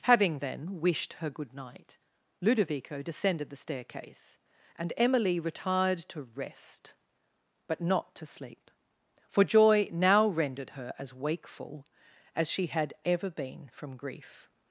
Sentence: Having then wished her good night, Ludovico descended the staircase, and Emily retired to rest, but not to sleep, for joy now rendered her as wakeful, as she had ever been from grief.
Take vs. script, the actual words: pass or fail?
pass